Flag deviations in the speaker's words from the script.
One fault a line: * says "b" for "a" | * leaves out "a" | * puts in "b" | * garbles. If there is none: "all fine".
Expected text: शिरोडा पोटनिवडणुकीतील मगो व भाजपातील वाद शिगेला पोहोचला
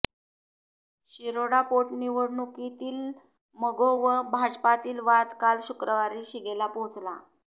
* puts in "काल शुक्रवारी"